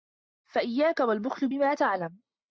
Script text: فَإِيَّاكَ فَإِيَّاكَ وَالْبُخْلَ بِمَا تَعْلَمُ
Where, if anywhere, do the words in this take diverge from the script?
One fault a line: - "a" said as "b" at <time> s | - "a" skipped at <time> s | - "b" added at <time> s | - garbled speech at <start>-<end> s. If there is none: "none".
- "فَإِيَّاكَ" skipped at 1.0 s